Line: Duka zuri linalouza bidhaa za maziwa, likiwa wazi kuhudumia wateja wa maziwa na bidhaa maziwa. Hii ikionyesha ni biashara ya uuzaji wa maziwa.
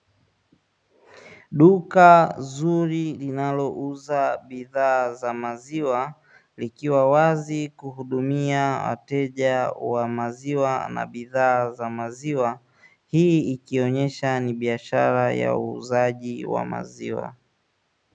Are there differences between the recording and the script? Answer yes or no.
yes